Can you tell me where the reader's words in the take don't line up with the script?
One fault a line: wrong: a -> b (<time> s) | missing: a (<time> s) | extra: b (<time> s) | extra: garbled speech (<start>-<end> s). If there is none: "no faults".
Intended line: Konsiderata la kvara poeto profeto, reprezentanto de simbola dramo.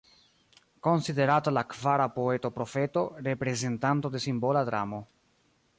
no faults